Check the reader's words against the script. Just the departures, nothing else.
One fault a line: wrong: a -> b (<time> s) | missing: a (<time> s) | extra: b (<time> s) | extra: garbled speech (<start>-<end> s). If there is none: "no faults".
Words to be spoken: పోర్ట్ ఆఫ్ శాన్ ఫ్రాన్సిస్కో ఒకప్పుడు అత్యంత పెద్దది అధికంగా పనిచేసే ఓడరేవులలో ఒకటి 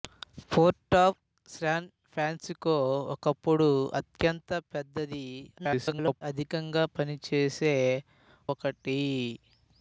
extra: garbled speech (5.6-6.2 s)
missing: ఓడరేవులలో (7.7 s)